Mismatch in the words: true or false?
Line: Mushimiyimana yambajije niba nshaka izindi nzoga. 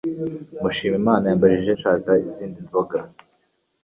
true